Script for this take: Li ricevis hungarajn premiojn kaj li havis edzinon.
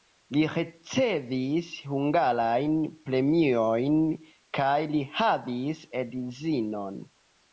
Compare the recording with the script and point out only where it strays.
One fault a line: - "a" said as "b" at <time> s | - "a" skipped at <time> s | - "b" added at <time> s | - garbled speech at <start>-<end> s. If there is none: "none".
none